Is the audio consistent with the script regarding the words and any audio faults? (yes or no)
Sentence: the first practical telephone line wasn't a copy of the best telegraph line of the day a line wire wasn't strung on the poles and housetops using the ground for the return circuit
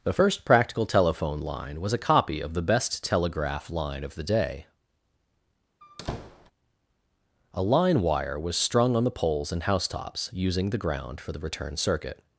no